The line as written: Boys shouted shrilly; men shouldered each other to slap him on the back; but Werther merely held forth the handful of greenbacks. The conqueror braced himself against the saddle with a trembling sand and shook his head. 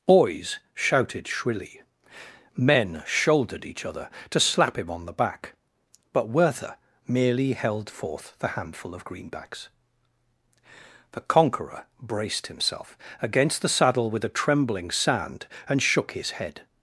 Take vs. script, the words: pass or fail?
pass